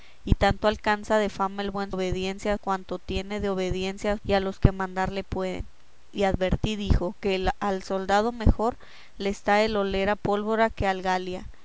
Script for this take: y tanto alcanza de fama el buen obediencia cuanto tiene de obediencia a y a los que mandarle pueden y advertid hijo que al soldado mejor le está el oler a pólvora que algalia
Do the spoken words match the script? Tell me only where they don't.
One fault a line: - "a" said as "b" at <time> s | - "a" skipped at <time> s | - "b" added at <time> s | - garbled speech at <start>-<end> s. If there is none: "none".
none